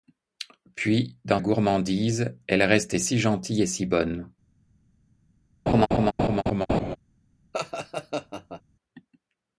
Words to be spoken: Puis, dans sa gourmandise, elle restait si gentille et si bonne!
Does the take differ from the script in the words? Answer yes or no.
yes